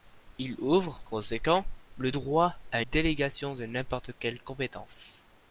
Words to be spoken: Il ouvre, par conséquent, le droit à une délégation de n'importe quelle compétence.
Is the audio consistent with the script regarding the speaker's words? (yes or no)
no